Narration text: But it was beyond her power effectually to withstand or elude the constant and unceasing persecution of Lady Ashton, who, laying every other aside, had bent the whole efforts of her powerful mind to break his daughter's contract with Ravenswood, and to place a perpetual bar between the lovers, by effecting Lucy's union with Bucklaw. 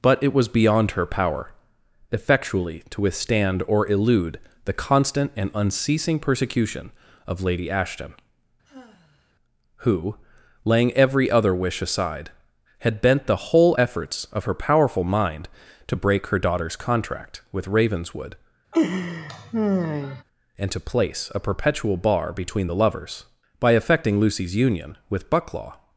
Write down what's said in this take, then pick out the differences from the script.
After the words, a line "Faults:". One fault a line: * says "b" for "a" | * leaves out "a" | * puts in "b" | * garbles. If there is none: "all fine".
But it was beyond her power effectually to withstand or elude the constant and unceasing persecution of Lady Ashton, who, laying every other wish aside, had bent the whole efforts of her powerful mind to break her daughter's contract with Ravenswood, and to place a perpetual bar between the lovers, by effecting Lucy's union with Bucklaw.
Faults:
* puts in "wish"
* says "her" for "his"